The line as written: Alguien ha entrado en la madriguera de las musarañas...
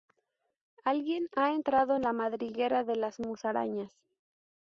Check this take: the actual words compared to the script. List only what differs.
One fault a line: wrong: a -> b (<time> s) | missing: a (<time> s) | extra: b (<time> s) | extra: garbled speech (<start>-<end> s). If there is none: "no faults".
no faults